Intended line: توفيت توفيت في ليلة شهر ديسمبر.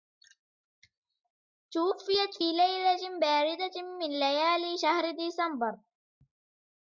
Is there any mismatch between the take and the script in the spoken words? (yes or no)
yes